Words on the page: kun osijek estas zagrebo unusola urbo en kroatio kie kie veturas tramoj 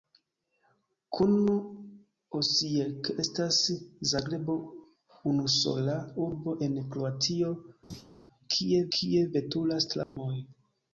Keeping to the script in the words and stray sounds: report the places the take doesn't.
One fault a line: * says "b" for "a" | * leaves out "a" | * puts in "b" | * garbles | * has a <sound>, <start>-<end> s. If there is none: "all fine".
* has a thud, 7.9-8.1 s
* has a dropout, 10.0-10.2 s